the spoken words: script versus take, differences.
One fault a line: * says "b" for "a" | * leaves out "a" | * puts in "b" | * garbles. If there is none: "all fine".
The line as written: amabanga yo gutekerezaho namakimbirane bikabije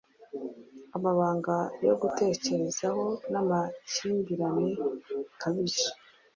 all fine